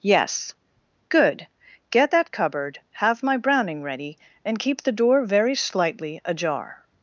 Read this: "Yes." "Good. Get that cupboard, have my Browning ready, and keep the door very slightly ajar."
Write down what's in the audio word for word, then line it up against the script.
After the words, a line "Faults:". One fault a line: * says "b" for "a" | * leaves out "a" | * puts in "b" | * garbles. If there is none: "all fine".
"Yes." "Good. Get that cupboard, have my Browning ready, and keep the door very slightly ajar."
Faults:
all fine